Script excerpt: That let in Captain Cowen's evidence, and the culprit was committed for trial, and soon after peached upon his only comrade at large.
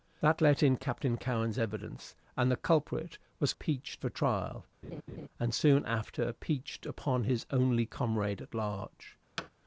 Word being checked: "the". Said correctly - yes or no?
yes